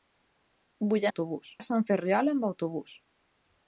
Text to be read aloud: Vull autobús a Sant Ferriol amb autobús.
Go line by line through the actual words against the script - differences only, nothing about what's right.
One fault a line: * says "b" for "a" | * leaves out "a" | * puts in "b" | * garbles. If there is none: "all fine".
all fine